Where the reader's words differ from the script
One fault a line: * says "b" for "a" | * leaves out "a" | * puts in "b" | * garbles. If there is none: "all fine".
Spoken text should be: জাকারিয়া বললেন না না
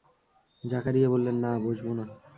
* puts in "বসব"